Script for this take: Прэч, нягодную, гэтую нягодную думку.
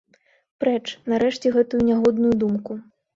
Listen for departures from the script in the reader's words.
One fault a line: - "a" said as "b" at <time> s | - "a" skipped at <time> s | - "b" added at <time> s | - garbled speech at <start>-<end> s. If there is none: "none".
- "нягодную" said as "нарэшце" at 1.1 s